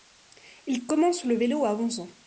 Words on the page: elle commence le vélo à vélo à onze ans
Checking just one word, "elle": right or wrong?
wrong